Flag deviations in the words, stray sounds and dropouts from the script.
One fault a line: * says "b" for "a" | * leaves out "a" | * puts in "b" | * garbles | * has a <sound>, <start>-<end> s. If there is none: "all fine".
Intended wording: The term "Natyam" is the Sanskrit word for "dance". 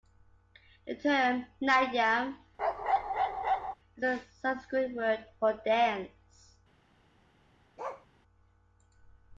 * has a bark, 2.6-3.7 s
* says "a" for "the"
* has a bark, 7.8-8.1 s